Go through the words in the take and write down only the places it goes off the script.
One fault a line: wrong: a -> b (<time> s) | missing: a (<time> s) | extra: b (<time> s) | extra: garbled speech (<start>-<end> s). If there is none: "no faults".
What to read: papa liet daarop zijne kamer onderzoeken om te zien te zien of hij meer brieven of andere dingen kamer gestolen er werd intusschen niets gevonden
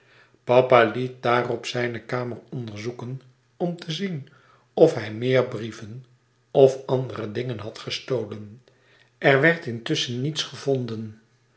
missing: te zien (4.3 s)
wrong: kamer -> had (7.6 s)